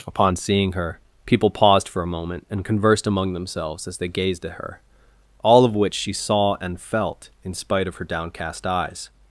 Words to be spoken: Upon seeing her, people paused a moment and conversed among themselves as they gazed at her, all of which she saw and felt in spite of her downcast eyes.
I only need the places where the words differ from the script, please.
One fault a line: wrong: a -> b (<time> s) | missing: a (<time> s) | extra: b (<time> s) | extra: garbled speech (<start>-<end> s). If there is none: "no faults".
extra: for (1.9 s)